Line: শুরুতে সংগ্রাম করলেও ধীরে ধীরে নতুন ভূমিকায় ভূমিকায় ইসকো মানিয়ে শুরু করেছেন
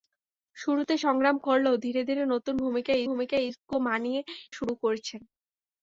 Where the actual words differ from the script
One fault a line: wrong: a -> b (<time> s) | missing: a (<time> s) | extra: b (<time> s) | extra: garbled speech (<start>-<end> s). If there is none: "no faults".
no faults